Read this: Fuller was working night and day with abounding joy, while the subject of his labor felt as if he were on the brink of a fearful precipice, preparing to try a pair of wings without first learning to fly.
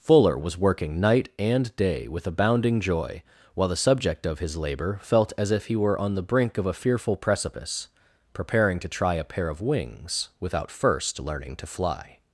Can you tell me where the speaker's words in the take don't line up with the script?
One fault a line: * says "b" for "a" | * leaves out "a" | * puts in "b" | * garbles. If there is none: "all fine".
all fine